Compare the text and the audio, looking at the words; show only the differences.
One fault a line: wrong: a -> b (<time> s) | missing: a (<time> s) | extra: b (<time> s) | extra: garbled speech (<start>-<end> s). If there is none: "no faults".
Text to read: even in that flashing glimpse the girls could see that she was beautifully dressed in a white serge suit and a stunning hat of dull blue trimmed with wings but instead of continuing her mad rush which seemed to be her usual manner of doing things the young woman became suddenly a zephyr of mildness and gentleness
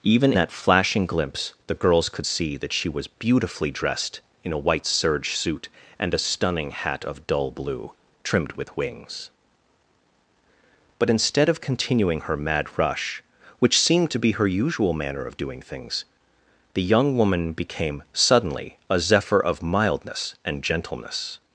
missing: in (0.3 s)